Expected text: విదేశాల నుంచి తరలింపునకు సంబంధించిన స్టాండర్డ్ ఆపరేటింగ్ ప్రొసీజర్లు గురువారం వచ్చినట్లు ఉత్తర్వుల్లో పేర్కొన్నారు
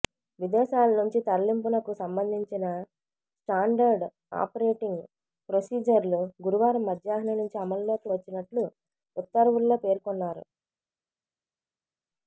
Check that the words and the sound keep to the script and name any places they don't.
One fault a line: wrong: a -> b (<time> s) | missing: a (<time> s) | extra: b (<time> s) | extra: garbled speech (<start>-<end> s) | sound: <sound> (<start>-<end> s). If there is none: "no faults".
extra: మధ్యాహ్నం నుంచి అమల్లోకి (6.9 s)